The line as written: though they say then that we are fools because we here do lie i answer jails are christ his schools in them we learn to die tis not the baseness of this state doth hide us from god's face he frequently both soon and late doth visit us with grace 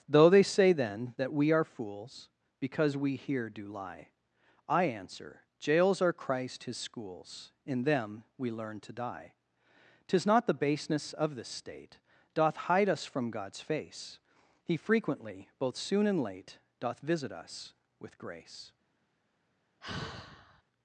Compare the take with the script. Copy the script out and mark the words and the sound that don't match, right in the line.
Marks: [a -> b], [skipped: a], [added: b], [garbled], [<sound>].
though they say then that we are fools because we here do lie i answer jails are christ his schools in them we learn to die tis not the baseness of this state doth hide us from god's face he frequently both soon and late doth visit us with grace [sigh]